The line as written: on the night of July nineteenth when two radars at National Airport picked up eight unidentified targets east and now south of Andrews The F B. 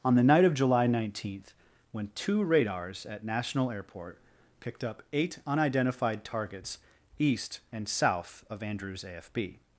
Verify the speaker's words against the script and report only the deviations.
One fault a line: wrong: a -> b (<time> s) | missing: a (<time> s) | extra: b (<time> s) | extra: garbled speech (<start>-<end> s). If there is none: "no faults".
missing: now (7.9 s)
wrong: The -> A (9.0 s)